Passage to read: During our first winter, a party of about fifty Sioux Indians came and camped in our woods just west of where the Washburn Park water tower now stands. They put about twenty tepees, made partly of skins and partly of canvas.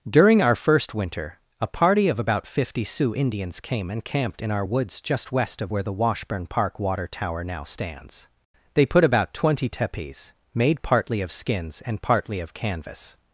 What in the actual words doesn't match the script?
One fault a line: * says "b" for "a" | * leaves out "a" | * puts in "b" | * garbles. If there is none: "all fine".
all fine